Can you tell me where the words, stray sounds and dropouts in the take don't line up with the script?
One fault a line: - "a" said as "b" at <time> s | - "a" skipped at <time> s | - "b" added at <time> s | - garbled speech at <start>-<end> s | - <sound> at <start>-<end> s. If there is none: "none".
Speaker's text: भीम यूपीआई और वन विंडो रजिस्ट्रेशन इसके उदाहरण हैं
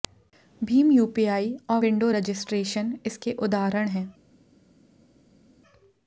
- "वन" skipped at 1.8 s